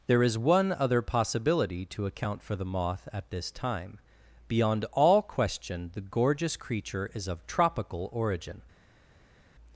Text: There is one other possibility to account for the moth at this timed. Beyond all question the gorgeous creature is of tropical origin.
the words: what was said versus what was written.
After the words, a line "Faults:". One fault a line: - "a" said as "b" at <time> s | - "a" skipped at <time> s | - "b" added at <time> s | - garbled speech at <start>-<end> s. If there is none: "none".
There is one other possibility to account for the moth at this time. Beyond all question the gorgeous creature is of tropical origin.
Faults:
- "timed" said as "time" at 3.5 s